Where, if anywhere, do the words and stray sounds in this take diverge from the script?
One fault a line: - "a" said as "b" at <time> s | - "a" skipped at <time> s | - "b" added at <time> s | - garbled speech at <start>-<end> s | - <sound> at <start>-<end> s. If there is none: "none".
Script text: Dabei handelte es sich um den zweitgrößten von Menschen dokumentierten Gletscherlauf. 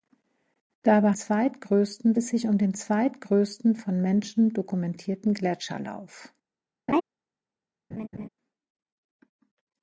- "handelte" said as "zweitgrößten" at 1.1 s
- laugh at 6.9-7.0 s
- laugh at 7.9-8.3 s